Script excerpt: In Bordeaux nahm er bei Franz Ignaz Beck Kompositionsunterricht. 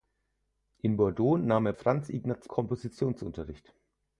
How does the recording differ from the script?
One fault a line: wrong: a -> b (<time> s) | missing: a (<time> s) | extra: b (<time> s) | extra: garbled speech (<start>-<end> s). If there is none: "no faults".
missing: bei (1.7 s)
missing: Beck (2.5 s)